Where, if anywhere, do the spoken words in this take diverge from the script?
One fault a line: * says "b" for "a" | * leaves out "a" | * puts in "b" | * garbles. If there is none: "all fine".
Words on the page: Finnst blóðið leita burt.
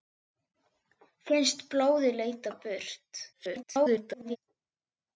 * garbles